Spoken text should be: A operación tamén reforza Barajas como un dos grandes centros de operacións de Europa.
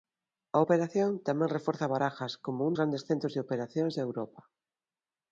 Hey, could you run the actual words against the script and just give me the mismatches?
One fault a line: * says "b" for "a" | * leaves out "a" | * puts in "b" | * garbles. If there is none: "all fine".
* leaves out "dos"